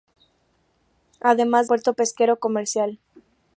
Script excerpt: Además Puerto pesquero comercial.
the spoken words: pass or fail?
pass